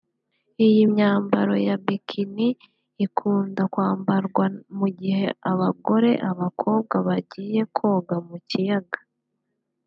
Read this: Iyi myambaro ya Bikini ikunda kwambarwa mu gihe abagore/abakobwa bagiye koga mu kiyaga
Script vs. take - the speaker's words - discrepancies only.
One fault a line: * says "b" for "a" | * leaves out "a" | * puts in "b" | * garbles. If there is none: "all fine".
all fine